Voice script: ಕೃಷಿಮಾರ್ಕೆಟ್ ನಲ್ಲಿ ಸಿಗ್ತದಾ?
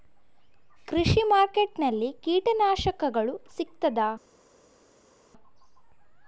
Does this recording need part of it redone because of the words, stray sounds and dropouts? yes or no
yes